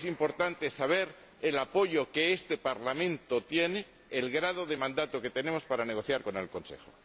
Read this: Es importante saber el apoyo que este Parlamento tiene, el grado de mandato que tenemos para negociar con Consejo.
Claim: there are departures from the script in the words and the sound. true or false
true